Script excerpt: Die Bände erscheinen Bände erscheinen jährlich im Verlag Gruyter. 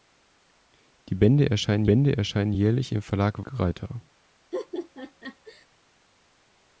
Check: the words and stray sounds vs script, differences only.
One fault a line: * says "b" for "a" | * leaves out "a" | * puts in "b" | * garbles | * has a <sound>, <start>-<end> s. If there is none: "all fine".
* has a laugh, 4.5-5.7 s